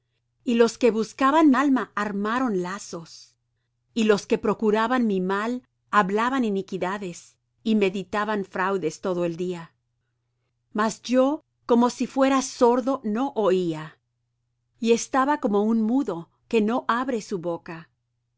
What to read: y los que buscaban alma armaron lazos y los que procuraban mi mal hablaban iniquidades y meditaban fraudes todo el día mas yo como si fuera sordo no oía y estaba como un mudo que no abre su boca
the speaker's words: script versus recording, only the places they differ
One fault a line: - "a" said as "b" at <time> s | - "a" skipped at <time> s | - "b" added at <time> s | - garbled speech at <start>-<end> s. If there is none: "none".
none